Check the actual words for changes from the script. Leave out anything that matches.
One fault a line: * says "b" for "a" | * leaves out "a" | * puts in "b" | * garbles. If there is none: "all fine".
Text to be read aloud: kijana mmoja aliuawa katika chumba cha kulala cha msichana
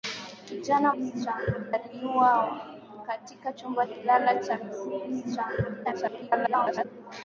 * says "msichana" for "mmoja"
* leaves out "cha"
* garbles